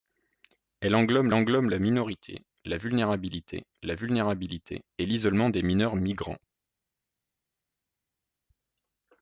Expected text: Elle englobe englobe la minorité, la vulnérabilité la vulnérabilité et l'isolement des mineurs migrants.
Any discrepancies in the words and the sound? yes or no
no